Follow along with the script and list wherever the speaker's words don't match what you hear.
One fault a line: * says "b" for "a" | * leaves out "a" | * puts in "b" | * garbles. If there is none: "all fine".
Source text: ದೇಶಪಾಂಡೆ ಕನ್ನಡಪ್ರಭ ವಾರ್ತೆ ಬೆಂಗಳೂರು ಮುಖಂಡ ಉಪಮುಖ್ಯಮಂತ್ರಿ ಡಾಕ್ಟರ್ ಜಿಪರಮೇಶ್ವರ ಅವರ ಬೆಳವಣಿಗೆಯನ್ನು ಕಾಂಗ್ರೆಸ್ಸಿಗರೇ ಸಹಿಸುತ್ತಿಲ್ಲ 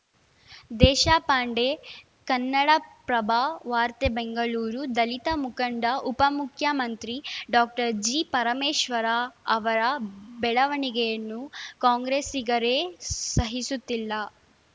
* puts in "ದಲಿತ"